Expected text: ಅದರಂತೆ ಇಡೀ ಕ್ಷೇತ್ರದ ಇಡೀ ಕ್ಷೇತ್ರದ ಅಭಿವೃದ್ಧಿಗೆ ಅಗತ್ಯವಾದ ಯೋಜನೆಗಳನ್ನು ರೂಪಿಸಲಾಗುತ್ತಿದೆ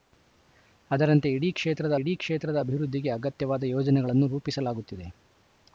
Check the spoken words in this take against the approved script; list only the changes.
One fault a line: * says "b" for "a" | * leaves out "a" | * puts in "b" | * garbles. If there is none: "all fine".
all fine